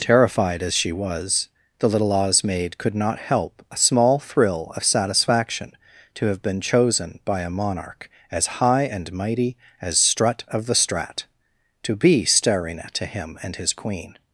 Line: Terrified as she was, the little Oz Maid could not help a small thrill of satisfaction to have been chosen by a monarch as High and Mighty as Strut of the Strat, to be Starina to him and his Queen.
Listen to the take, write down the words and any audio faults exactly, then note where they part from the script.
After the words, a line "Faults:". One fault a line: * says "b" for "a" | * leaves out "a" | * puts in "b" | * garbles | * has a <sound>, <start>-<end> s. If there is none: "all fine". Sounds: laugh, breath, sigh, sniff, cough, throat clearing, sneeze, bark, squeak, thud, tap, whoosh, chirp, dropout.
Terrified as she was, the little Oz Maid could not help a small thrill of satisfaction to have been chosen by a monarch as High and Mighty as Strut of the Strat, to be Starina to him and his Queen.
Faults:
all fine